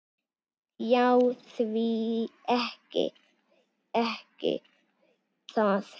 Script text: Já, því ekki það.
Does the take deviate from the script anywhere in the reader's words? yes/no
yes